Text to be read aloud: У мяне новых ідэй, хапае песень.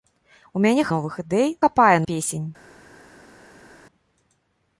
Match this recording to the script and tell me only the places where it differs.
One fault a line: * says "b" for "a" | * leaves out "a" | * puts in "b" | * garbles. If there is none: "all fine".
all fine